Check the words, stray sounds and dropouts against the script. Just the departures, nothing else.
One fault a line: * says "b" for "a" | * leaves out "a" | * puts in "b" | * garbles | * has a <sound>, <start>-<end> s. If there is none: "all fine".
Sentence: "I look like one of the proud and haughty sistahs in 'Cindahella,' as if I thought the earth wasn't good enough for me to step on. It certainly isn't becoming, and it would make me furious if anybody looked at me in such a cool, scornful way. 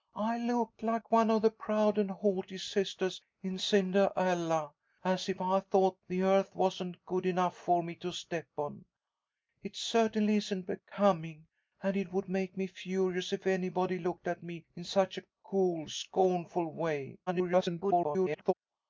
* garbles